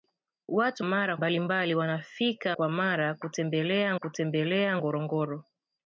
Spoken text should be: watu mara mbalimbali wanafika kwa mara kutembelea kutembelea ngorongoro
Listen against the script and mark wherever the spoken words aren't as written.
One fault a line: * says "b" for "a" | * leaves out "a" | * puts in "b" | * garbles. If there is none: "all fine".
all fine